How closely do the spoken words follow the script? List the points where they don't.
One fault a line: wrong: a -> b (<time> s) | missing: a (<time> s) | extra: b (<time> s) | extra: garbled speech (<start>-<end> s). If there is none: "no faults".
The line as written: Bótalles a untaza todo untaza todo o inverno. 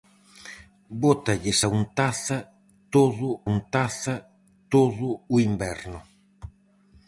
no faults